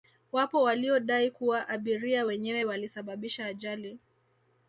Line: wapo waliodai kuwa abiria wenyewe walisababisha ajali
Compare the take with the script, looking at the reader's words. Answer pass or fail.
pass